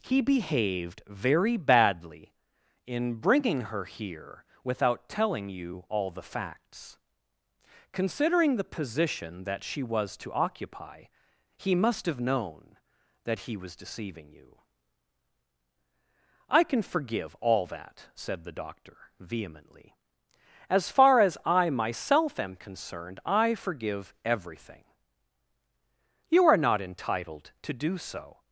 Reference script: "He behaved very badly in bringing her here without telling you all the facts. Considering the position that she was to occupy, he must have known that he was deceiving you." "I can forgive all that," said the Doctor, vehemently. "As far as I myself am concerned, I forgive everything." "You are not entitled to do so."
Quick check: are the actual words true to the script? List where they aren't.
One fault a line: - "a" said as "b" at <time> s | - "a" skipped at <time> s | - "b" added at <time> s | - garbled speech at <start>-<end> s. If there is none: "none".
none